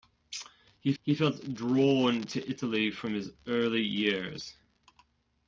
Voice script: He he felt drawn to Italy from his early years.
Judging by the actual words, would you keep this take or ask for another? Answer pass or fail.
pass